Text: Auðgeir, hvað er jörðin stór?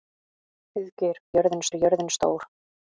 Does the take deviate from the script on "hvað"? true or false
true